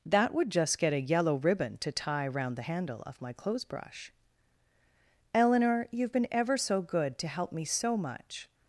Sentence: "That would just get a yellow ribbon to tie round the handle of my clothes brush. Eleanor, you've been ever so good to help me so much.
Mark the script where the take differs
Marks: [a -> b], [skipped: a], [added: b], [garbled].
"That would just get a yellow ribbon to tie round the handle of my clothes brush. Eleanor, you've been ever so good to help me so much.